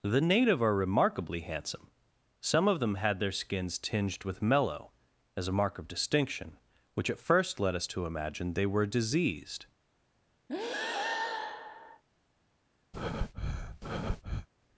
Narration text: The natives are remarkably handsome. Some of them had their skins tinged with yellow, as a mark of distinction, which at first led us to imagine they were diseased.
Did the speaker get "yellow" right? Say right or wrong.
wrong